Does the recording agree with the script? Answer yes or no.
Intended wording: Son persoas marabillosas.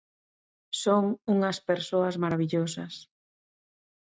no